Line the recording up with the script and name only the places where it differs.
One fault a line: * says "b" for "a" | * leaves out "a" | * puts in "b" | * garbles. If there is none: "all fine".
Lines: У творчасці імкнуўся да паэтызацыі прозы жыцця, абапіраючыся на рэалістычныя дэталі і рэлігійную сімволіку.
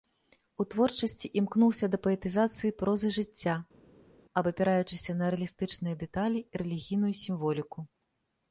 all fine